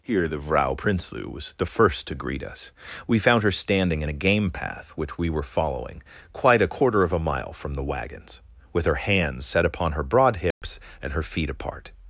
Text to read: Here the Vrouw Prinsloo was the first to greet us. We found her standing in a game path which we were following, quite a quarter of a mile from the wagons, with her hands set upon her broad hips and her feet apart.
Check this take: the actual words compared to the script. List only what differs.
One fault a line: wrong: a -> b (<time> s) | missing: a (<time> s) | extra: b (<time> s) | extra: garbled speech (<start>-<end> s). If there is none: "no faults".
no faults